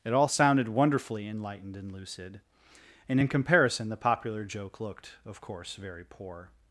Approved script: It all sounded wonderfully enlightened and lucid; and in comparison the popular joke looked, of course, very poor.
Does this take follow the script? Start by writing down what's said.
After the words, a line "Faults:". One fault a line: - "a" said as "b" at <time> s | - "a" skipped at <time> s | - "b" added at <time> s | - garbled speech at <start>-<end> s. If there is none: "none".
It all sounded wonderfully enlightened and lucid; and in comparison the popular joke looked, of course, very poor.
Faults:
none